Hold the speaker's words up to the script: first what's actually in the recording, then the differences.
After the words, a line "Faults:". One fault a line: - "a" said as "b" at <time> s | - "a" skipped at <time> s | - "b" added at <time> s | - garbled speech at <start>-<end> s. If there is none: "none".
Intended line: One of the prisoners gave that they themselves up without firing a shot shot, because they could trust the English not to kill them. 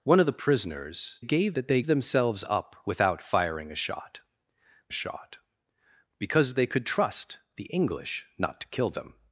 One of the prisoners gave that they themselves up without firing a shot shot, because they could trust the English not to kill them.
Faults:
none